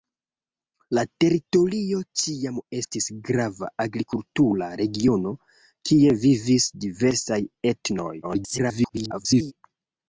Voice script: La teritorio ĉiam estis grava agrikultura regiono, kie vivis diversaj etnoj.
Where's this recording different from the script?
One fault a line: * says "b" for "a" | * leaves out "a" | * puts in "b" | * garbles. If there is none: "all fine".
* garbles